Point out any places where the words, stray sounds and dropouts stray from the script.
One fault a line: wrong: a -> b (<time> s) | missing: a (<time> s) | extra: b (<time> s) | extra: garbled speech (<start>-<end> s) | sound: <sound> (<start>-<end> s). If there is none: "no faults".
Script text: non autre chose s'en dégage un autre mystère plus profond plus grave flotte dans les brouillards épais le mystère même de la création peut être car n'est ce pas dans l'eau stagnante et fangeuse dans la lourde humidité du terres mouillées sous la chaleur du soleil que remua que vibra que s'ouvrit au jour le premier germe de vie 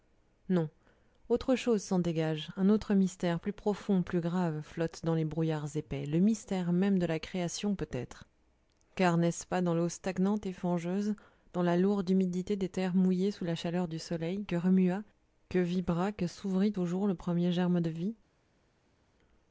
wrong: du -> des (12.6 s)